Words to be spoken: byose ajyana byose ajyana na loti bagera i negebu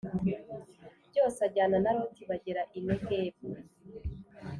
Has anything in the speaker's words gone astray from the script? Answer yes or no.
yes